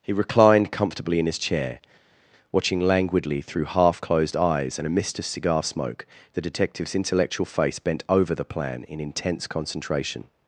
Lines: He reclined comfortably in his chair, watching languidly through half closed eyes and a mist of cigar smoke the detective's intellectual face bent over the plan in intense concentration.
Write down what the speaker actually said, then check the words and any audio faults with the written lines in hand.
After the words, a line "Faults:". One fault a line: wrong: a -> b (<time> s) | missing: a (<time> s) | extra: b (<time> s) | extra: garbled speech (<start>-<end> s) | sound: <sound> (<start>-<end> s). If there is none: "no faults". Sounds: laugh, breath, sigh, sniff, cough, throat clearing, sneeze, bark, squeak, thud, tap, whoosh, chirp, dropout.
He reclined comfortably in his chair, watching languidly through half closed eyes and a mist of cigar smoke the detective's intellectual face bent over the plan in intense concentration.
Faults:
no faults